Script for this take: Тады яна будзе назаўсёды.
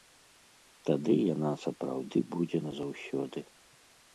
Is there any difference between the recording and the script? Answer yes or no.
yes